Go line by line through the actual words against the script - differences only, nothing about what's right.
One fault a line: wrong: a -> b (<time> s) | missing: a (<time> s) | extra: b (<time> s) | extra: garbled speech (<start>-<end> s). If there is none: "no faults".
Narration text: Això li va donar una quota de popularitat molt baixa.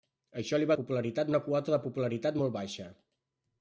wrong: donar -> popularitat (0.8 s)